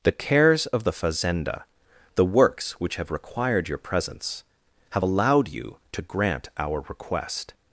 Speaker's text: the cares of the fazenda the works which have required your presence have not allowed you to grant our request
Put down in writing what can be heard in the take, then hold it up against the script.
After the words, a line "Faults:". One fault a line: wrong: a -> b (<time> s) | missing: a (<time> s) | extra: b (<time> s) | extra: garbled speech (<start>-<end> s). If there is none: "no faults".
the cares of the fazenda the works which have required your presence have allowed you to grant our request
Faults:
missing: not (5.0 s)